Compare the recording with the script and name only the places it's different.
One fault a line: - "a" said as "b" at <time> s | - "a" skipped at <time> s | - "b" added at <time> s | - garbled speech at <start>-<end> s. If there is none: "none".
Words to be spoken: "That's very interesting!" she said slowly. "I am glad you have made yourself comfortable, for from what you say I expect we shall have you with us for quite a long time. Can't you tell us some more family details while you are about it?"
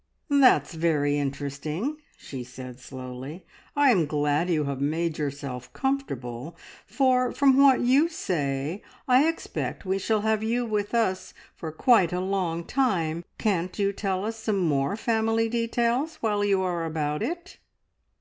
none